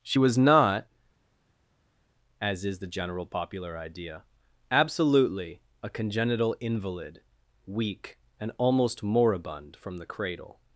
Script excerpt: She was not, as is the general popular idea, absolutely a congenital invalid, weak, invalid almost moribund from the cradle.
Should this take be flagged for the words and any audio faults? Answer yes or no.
yes